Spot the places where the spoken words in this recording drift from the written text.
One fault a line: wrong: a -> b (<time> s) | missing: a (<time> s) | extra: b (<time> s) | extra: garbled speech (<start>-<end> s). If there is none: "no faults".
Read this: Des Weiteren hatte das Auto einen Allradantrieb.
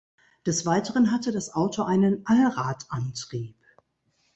no faults